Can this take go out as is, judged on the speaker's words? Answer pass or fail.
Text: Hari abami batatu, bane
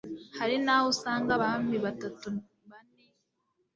fail